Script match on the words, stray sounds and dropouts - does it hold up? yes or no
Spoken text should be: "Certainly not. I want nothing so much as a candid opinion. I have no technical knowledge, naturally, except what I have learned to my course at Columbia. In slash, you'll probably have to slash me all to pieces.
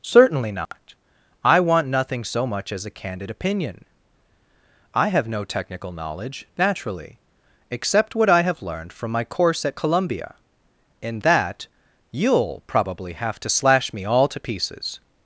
no